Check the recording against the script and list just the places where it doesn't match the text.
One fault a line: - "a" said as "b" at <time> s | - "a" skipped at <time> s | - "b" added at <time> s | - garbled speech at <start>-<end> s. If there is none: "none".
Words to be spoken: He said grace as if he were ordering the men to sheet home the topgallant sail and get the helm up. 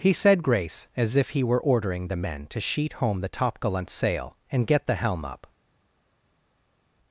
none